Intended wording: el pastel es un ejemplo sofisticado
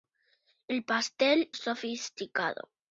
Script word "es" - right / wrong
wrong